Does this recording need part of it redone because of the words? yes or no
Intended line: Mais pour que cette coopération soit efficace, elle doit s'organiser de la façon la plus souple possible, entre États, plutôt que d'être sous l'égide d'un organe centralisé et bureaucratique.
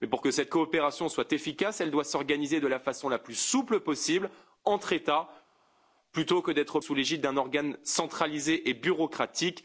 no